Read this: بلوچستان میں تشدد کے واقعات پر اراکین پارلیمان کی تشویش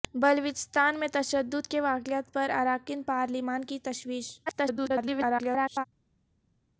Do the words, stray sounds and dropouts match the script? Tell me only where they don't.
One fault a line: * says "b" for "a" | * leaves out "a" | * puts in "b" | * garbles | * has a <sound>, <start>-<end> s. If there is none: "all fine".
* garbles